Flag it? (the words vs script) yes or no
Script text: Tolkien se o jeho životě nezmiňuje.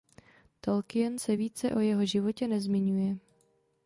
yes